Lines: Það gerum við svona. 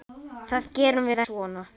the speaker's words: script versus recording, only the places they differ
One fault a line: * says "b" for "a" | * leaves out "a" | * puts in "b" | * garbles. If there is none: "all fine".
all fine